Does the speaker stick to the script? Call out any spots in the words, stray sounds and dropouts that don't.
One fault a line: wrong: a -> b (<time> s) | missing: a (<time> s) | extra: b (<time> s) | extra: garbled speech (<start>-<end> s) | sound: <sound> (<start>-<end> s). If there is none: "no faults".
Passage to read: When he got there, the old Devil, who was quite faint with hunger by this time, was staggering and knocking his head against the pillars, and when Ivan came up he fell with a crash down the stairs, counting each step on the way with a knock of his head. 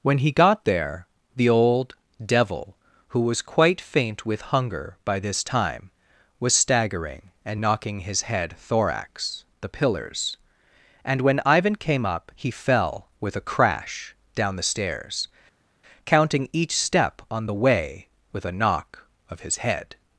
wrong: against -> thorax (8.6 s)